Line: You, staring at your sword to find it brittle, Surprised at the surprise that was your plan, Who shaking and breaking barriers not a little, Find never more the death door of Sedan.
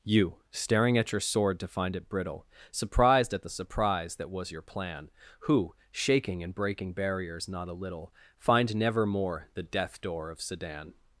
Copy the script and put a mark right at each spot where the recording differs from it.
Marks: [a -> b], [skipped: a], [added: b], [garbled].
You, staring at your sword to find it brittle, Surprised at the surprise that was your plan, Who shaking and breaking barriers not a little, Find never more the death door of Sedan.